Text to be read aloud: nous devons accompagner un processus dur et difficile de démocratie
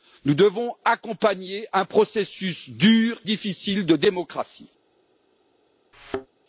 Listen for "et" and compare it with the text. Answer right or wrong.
wrong